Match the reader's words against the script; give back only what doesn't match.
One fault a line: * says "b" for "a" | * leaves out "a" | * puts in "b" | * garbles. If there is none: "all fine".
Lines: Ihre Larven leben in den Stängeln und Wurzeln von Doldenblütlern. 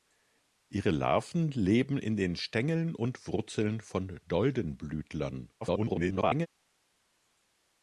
* garbles